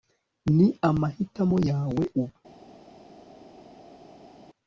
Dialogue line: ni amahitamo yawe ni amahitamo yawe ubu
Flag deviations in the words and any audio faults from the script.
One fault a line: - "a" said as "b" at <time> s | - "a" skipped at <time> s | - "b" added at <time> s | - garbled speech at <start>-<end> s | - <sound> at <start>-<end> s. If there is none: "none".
- "ni amahitamo yawe" skipped at 2.0 s